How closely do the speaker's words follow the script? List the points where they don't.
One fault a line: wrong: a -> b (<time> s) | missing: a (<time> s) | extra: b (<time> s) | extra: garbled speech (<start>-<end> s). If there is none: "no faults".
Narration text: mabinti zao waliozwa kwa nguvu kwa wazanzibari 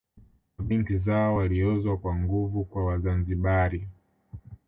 no faults